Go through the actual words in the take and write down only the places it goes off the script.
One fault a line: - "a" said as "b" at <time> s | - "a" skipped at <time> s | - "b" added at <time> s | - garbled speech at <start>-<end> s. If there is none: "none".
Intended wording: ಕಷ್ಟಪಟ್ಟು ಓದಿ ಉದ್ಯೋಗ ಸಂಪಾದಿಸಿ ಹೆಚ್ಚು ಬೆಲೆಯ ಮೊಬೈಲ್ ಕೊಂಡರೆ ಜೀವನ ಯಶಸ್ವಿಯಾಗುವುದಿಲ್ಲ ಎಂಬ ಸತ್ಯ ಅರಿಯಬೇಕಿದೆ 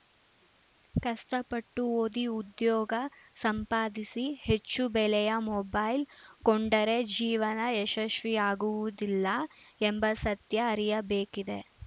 none